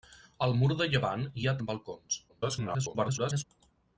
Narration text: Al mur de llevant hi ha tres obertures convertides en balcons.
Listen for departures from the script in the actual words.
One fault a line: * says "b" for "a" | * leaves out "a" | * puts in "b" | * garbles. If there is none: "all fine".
* leaves out "tres obertures convertides"
* garbles